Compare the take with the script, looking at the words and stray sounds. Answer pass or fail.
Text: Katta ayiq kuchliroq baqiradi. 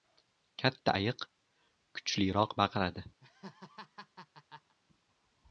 fail